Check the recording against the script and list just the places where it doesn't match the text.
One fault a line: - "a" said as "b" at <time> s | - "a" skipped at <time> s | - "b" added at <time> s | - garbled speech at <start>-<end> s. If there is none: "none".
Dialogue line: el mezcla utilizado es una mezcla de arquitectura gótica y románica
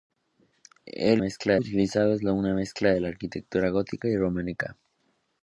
none